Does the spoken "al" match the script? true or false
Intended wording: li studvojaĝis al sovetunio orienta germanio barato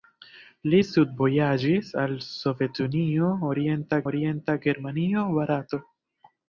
true